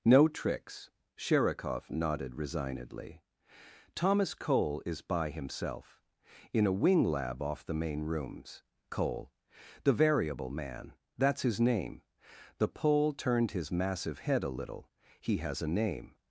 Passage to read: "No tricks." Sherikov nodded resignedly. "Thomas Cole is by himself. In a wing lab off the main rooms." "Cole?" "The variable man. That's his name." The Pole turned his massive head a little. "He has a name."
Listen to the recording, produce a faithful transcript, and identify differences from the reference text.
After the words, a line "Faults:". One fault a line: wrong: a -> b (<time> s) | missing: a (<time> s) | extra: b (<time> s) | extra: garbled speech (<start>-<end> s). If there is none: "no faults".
"No tricks." Sherikov nodded resignedly. "Thomas Cole is by himself. In a wing lab off the main rooms." "Cole?" "The variable man. That's his name." The Pole turned his massive head a little. "He has a name."
Faults:
no faults